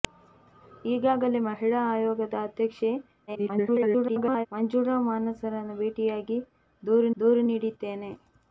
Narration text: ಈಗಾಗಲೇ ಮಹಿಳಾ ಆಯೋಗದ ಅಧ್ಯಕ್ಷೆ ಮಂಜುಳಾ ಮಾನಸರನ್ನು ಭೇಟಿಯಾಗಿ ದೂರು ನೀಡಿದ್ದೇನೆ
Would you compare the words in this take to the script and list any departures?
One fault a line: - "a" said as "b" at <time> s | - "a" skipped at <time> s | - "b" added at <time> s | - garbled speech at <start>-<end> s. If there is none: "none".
- garbled speech at 3.3-4.5 s
- "ದೂರು" added at 7.2 s